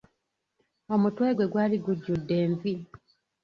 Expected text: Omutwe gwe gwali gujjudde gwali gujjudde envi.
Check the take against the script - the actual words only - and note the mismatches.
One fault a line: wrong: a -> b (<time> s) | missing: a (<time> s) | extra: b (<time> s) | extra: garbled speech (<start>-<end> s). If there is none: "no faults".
missing: gwali gujjudde (2.3 s)